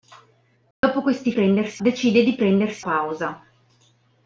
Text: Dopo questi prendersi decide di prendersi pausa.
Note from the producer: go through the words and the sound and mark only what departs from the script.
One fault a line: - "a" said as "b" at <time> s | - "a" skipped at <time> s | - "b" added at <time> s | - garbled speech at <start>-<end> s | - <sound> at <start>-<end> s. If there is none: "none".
- dropout at 0.7-0.8 s